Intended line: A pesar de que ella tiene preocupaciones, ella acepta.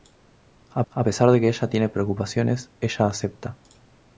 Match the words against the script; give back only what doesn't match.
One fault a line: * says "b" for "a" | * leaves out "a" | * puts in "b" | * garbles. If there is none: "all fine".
* puts in "a"